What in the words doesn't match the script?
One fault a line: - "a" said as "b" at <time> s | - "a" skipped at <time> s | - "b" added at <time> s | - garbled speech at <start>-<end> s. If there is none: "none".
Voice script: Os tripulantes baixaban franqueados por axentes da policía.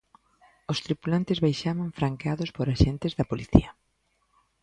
none